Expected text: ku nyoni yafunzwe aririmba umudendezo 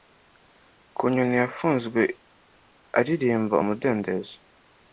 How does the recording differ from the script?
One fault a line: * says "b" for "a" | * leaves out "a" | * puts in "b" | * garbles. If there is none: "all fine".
all fine